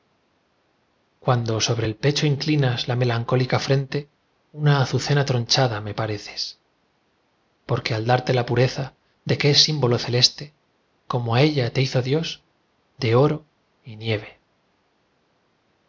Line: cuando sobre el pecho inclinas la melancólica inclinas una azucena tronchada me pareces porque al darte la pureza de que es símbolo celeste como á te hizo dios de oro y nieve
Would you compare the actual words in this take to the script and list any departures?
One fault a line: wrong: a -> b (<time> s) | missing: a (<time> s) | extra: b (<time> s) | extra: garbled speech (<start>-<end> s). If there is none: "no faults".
wrong: inclinas -> frente (3.6 s)
extra: ella (11.4 s)